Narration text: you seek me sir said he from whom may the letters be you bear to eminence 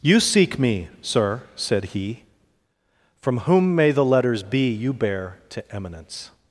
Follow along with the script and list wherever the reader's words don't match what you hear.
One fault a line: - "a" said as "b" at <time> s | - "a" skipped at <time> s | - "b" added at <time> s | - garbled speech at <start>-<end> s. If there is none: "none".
none